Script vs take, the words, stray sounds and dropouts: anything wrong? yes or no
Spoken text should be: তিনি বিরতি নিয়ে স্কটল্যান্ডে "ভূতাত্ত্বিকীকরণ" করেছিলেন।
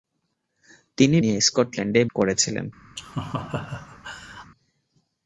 yes